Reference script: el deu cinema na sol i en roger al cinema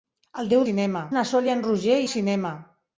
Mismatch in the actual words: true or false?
false